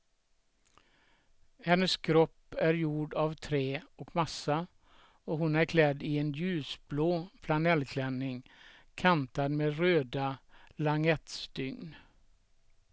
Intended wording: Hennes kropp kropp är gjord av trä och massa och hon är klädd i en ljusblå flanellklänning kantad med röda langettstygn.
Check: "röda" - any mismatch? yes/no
no